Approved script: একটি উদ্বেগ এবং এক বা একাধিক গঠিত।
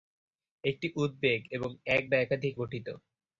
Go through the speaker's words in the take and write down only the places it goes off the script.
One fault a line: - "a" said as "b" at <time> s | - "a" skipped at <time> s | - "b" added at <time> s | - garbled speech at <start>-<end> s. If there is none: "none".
none